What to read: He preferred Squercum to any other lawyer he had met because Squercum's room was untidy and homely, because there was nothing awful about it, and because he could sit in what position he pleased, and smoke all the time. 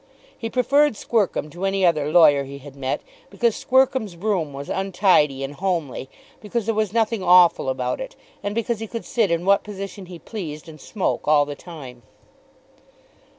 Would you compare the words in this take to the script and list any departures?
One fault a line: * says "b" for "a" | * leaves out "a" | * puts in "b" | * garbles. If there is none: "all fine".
all fine